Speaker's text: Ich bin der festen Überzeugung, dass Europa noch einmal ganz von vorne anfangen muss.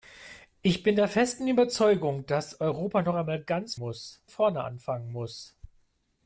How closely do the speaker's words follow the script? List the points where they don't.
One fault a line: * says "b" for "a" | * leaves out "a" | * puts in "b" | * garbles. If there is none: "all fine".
* says "muss" for "von"